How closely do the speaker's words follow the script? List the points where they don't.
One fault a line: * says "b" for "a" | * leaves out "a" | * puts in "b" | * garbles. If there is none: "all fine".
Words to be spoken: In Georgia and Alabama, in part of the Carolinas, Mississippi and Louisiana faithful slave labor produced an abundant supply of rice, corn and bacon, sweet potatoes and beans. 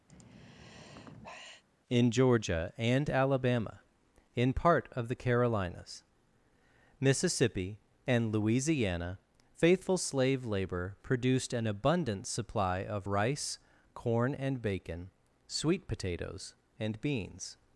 all fine